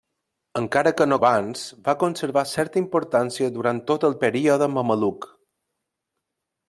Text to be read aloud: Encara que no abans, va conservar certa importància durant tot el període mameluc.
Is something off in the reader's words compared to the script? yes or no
no